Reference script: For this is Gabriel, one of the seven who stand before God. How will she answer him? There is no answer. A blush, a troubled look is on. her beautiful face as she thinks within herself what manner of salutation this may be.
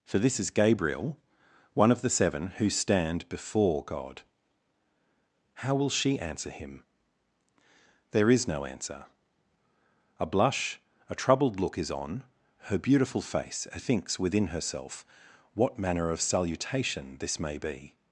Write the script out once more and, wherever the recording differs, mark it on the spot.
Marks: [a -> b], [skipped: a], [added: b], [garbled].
For this is Gabriel, one of the seven who stand before God. How will she answer him? There is no answer. A blush, a troubled look is on. her beautiful face as [skipped: she] thinks within herself what manner of salutation this may be.